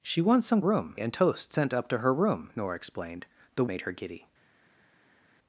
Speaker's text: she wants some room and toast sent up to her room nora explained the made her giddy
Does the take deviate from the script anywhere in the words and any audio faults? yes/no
no